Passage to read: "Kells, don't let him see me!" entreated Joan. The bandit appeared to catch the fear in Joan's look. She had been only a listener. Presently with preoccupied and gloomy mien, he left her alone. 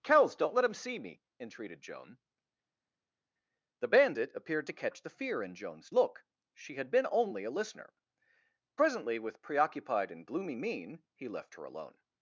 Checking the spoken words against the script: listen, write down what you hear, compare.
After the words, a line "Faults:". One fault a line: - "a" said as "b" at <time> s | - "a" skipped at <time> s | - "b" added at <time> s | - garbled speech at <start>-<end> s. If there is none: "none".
"Kells, don't let him see me!" entreated Joan. The bandit appeared to catch the fear in Joan's look. She had been only a listener. Presently with preoccupied and gloomy mien, he left her alone.
Faults:
none